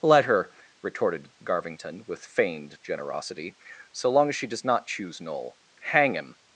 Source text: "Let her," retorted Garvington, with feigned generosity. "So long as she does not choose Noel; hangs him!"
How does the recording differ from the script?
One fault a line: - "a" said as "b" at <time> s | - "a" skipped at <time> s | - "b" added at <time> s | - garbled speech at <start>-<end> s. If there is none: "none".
- "hangs" said as "hang" at 5.8 s